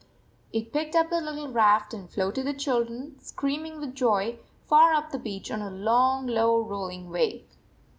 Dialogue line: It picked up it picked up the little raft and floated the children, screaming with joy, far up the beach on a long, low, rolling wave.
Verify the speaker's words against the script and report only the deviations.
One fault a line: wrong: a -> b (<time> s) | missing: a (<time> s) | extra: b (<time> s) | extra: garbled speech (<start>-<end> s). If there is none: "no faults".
missing: it picked up (1.1 s)